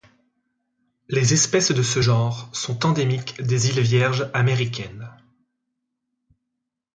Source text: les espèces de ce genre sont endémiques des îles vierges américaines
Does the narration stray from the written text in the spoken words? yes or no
no